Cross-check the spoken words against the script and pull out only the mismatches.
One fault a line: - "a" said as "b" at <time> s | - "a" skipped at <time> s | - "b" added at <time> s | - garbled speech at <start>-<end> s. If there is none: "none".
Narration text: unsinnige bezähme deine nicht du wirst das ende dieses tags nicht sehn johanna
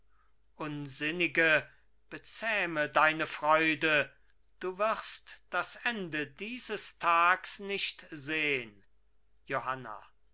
- "nicht" said as "freude" at 3.3 s